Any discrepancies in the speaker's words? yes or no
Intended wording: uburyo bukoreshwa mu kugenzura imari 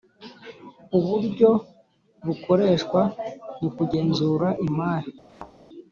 no